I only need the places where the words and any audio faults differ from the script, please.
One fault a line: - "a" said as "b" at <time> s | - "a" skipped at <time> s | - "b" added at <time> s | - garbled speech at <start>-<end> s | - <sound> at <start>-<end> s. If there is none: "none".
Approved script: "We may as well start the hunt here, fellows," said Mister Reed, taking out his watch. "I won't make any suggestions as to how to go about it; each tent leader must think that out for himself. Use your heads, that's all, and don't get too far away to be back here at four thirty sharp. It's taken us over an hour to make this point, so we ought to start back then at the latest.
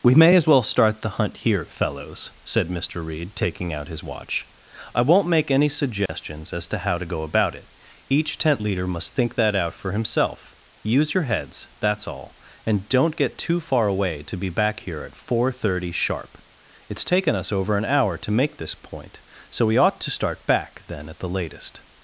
- dropout at 6.1-6.1 s